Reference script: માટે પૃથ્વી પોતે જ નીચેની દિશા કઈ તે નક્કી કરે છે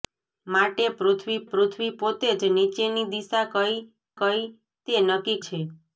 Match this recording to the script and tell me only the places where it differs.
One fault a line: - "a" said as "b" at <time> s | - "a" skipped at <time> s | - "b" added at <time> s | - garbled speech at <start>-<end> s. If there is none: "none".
- "પૃથ્વી" added at 1.5 s
- "કઈ" added at 4.2 s
- "કરે" skipped at 5.4 s